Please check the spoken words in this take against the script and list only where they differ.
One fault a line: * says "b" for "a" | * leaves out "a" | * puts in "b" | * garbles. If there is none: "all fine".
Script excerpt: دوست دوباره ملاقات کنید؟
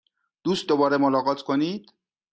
all fine